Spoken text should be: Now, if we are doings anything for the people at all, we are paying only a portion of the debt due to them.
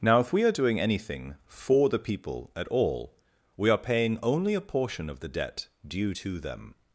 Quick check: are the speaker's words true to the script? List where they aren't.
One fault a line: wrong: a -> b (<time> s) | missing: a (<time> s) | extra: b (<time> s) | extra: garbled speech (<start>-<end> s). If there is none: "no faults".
wrong: doings -> doing (0.5 s)